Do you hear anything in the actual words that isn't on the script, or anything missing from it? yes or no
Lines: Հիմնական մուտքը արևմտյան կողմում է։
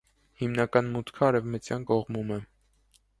no